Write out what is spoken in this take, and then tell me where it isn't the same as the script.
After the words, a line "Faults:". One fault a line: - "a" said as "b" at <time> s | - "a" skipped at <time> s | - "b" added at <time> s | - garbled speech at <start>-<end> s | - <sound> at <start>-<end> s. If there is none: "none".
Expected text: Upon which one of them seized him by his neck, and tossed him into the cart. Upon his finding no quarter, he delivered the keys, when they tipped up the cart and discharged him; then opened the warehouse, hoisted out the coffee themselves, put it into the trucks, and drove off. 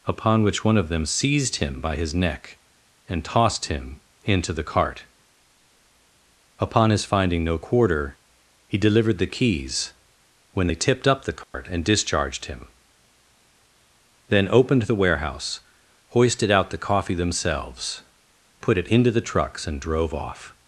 Upon which one of them seized him by his neck, and tossed him into the cart. Upon his finding no quarter, he delivered the keys, when they tipped up the cart and discharged him; then opened the warehouse, hoisted out the coffee themselves, put it into the trucks, and drove off.
Faults:
- dropout at 11.4-11.5 s